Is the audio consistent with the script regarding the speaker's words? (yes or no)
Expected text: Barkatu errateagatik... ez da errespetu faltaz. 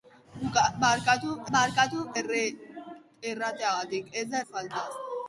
no